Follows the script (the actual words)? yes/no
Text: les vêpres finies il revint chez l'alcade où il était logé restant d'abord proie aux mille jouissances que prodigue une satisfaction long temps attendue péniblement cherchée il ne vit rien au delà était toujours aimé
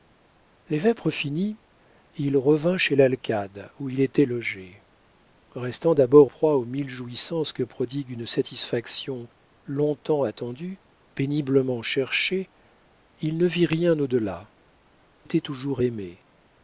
yes